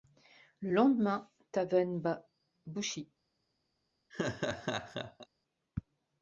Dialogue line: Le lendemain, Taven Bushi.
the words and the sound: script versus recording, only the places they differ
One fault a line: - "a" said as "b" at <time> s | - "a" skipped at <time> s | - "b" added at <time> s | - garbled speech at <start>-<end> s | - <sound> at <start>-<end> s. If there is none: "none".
- "bat" added at 2.0 s
- laugh at 4.1-5.3 s